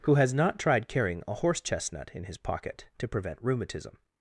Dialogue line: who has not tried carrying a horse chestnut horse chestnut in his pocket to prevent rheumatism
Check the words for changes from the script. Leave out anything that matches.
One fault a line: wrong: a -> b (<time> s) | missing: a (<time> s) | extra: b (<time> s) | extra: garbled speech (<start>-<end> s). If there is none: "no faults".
missing: horse chestnut (2.1 s)